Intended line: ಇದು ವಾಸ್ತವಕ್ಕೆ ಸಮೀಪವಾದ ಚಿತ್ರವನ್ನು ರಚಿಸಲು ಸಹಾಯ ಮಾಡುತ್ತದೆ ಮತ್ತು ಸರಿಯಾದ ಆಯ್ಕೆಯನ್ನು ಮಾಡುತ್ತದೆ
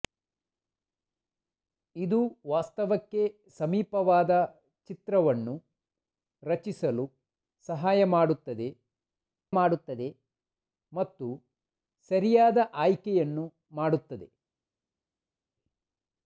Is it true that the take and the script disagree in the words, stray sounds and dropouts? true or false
true